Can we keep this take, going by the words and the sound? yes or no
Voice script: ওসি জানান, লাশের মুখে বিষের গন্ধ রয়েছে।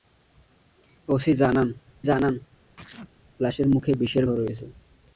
no